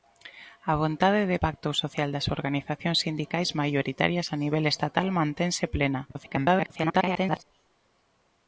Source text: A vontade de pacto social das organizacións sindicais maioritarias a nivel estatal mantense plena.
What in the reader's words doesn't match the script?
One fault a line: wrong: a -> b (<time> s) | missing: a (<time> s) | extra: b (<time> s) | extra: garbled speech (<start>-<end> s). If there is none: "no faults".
extra: garbled speech (6.1-7.4 s)